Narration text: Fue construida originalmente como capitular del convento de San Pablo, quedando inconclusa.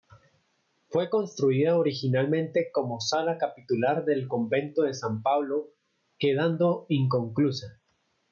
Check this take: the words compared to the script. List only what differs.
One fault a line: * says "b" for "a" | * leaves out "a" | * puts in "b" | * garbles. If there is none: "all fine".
* puts in "sala"